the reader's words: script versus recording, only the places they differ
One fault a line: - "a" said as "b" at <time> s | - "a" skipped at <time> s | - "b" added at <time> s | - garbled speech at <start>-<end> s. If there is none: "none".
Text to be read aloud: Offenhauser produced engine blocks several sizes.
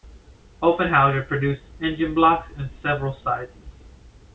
- "in" added at 2.6 s